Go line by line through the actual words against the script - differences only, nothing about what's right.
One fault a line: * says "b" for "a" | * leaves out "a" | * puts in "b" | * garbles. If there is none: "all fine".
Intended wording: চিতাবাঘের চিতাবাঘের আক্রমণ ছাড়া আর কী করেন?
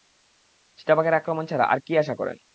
* leaves out "চিতাবাঘের"
* puts in "আশা"